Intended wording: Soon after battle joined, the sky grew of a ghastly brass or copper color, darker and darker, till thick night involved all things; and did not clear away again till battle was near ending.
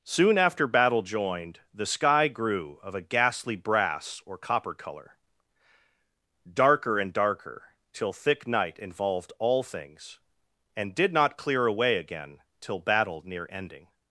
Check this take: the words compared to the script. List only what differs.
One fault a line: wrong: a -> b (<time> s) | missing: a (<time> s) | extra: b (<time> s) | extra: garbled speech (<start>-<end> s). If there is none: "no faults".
missing: was (13.2 s)